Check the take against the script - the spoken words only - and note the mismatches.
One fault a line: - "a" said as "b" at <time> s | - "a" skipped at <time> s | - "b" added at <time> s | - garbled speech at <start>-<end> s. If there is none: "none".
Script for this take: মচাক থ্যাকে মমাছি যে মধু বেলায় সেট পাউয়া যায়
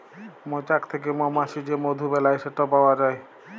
none